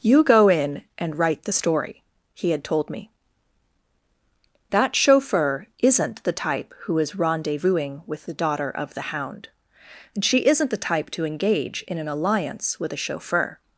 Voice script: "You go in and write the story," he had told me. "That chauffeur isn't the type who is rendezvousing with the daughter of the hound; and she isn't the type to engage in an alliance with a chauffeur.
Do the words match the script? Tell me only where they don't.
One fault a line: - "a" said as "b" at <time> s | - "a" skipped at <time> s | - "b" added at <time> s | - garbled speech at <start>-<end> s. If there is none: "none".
none